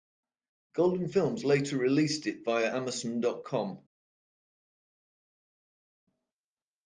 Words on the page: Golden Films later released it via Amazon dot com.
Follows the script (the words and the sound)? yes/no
yes